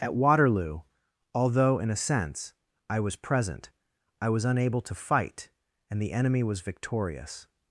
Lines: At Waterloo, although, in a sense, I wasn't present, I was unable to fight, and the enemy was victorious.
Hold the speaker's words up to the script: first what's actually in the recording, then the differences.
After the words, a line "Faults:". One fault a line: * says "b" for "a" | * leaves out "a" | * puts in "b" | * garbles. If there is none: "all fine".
At Waterloo, although, in a sense, I was present, I was unable to fight, and the enemy was victorious.
Faults:
* says "was" for "wasn't"